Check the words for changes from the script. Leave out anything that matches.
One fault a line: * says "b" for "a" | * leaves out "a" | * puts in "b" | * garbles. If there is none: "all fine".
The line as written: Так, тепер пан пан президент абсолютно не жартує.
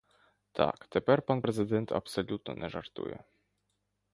* leaves out "пан"